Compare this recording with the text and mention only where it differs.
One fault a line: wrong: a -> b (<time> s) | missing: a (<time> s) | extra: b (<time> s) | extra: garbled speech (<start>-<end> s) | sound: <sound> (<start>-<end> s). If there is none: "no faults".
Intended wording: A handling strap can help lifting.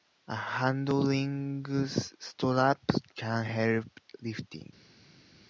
no faults